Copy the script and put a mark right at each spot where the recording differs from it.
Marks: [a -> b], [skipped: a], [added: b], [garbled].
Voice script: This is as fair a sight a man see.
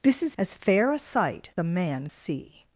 This is as fair a sight a man see.